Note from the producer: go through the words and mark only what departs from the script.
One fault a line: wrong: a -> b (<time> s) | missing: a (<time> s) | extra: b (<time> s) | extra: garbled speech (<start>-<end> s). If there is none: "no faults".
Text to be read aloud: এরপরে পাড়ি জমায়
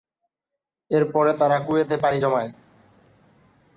extra: তারা কুয়েতে (1.3 s)